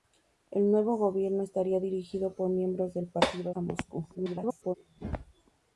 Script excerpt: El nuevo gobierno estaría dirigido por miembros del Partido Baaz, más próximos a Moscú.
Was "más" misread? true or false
true